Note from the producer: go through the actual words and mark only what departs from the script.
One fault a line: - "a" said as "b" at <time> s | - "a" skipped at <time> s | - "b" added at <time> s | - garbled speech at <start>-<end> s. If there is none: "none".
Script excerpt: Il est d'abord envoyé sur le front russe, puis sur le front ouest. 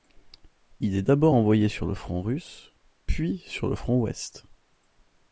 none